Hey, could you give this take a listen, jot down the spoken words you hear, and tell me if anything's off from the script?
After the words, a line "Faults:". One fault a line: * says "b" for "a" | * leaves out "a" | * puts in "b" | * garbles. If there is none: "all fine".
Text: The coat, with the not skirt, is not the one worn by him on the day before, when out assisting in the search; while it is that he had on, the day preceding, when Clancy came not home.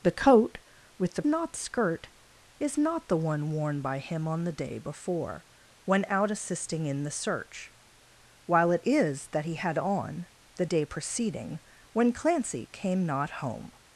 The coat, with the not skirt, is not the one worn by him on the day before, when out assisting in the search; while it is that he had on, the day preceding, when Clancy came not home.
Faults:
all fine